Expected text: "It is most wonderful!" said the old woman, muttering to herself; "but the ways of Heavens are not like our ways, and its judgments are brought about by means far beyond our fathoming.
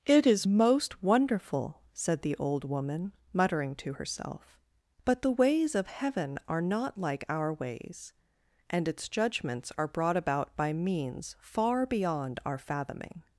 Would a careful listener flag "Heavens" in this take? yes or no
yes